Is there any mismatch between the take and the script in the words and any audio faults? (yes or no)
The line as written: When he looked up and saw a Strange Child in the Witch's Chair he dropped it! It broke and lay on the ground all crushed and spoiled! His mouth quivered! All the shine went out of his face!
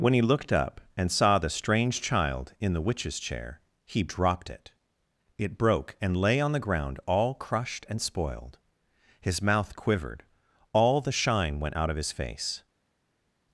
yes